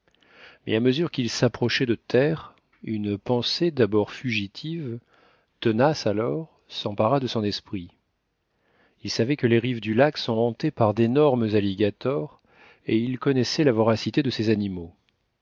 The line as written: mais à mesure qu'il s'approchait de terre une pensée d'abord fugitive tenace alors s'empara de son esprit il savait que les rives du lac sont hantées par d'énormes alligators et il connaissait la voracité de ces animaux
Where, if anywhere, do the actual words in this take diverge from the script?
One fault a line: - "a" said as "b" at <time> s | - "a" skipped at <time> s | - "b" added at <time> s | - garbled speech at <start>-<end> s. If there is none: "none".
none